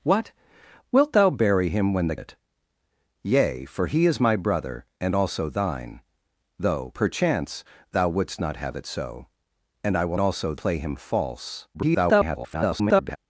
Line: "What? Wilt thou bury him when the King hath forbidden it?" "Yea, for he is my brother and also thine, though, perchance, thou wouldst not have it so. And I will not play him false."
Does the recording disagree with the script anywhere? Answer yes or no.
yes